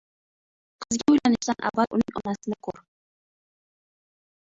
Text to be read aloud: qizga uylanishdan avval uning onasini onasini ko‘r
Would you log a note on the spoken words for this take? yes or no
yes